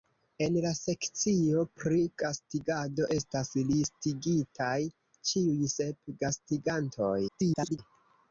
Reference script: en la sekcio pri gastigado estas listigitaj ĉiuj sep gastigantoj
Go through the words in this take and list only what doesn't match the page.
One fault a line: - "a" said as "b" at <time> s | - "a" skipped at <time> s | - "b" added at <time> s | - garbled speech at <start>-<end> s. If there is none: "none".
- garbled speech at 7.3-7.8 s